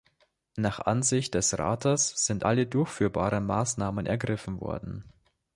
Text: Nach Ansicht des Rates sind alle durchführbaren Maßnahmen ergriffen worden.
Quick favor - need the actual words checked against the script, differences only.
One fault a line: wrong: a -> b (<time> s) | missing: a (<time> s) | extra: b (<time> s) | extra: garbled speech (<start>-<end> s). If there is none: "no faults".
no faults